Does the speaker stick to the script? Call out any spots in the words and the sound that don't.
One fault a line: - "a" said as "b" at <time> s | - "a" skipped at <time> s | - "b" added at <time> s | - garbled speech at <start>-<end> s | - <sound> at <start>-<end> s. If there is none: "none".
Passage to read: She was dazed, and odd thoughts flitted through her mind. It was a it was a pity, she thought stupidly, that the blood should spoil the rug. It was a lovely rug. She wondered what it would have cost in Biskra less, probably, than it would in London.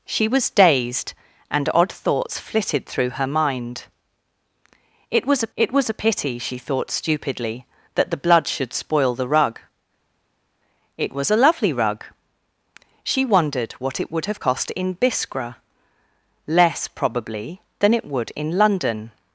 none